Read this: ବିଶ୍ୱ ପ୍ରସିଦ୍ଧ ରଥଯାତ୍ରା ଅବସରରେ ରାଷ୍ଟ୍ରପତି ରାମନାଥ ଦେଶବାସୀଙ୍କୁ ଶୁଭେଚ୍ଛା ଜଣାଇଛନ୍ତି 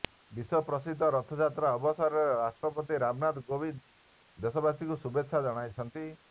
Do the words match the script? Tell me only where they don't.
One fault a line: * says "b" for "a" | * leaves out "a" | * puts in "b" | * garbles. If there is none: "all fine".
* puts in "କୋବିନ୍ଦ"